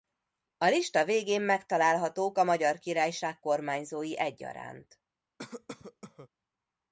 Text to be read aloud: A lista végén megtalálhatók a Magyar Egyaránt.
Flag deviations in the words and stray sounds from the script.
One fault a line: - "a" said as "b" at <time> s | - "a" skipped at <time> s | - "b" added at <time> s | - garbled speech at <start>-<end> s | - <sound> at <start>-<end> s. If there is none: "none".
- "Királyság kormányzói" added at 2.8 s
- cough at 5.4-6.3 s